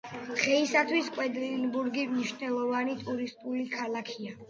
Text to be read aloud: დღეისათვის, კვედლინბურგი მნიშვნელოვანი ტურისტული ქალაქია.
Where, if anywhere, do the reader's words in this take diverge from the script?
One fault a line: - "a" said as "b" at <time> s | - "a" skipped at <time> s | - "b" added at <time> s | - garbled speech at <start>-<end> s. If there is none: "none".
none